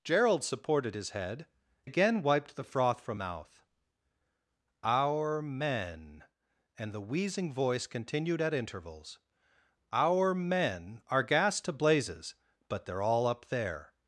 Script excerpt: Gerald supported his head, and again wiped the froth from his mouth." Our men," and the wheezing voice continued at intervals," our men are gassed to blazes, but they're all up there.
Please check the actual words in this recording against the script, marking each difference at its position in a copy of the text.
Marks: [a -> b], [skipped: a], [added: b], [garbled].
Gerald supported his head, [skipped: and] again wiped the froth from [skipped: his] mouth." Our men," and the wheezing voice continued at intervals," our men are gassed to blazes, but they're all up there.